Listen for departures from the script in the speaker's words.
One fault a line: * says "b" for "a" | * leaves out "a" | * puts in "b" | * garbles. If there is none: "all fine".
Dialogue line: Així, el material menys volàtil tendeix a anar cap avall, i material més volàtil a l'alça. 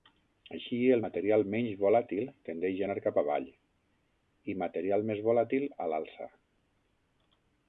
all fine